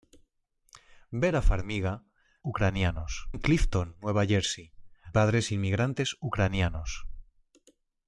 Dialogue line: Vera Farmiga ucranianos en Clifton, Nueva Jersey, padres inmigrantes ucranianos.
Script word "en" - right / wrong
right